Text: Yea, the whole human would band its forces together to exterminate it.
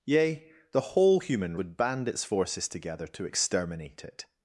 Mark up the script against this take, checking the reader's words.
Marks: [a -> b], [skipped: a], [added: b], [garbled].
Yea, the whole human would band its forces together to exterminate it.